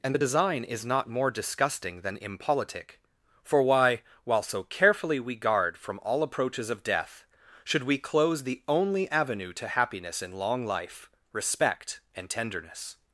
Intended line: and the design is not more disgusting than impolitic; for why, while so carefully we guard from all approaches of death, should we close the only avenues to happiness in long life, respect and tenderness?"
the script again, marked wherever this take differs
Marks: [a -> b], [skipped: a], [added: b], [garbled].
and the design is not more disgusting than impolitic; for why, while so carefully we guard from all approaches of death, should we close the only [avenues -> avenue] to happiness in long life, respect and tenderness?"